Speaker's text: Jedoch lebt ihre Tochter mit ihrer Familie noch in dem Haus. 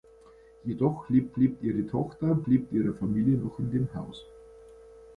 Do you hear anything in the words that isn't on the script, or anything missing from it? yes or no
yes